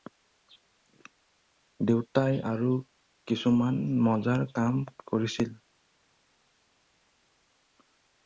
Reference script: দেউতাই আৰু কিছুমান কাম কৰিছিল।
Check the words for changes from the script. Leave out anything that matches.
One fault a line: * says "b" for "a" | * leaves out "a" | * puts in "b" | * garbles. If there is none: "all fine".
* puts in "মজাৰ"